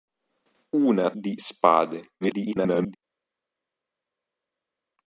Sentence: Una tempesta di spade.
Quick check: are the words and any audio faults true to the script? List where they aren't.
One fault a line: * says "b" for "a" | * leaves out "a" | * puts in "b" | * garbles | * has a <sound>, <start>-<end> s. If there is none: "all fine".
* leaves out "tempesta"
* garbles